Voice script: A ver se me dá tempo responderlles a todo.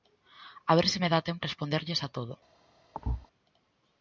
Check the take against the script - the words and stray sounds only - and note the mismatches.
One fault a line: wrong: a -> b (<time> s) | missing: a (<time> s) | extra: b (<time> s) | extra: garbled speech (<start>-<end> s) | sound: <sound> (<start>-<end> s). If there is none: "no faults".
sound: thud (2.9-3.3 s)